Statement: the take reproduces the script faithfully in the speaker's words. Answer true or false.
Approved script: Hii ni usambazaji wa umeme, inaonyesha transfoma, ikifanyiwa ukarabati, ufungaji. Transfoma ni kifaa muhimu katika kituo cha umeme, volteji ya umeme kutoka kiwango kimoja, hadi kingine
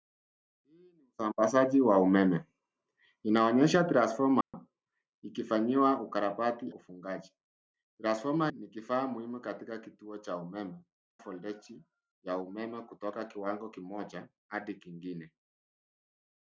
true